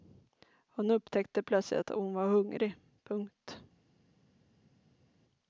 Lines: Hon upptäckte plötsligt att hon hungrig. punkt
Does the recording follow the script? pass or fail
fail